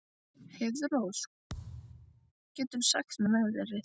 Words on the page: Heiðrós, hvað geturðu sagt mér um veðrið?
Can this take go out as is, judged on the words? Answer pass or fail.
fail